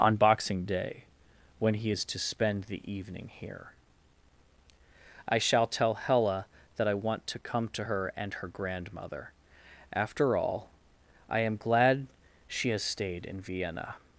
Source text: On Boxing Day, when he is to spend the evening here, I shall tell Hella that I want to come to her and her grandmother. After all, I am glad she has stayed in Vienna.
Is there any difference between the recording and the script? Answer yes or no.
no